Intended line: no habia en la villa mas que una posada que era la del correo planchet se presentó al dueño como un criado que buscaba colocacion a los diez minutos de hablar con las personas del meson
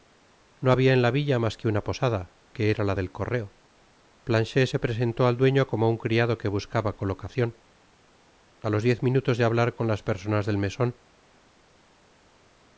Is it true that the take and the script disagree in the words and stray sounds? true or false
false